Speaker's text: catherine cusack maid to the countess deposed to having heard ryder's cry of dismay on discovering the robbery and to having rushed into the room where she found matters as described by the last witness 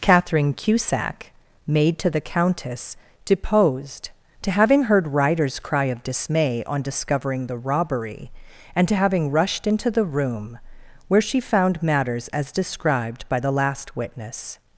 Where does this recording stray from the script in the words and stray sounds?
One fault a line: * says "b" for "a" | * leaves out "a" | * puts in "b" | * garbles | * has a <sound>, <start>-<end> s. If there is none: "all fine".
all fine